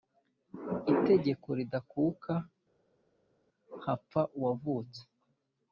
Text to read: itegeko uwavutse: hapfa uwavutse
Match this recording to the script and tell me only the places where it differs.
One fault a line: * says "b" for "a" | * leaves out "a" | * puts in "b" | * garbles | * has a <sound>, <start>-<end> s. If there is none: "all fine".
* says "ridakuka" for "uwavutse"